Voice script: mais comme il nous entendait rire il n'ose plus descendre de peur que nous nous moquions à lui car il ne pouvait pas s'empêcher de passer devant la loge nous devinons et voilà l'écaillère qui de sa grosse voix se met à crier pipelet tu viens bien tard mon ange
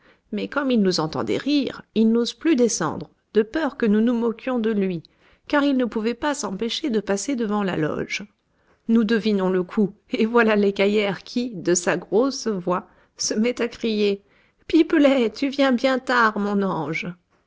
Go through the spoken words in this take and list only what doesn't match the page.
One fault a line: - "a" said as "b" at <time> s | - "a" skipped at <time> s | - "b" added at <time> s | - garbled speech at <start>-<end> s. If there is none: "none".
- "à" said as "de" at 4.6 s
- "le coup" added at 9.5 s